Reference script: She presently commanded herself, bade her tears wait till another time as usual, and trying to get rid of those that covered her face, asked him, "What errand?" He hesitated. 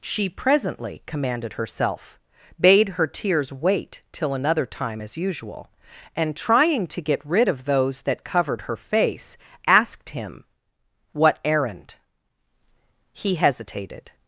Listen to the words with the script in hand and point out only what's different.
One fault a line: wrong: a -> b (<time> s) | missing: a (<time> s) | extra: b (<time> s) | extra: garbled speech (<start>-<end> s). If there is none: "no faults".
no faults